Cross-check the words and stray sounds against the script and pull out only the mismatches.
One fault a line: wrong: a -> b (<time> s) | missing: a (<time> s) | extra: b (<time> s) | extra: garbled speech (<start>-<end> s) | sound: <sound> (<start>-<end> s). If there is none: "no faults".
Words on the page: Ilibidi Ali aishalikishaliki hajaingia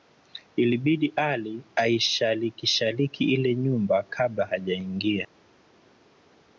extra: ile nyumba kabla (3.2 s)